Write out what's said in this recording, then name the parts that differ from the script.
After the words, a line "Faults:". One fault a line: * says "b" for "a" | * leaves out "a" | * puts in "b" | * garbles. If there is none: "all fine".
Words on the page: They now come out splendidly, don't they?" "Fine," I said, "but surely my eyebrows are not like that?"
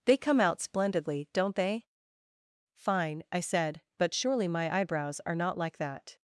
They come out splendidly, don't they?" "Fine," I said, "but surely my eyebrows are not like that?"
Faults:
* leaves out "now"